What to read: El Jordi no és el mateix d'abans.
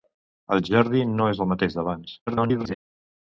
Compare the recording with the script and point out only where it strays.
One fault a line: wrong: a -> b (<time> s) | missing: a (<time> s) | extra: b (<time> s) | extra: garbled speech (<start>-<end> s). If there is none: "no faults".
extra: garbled speech (2.3-2.7 s)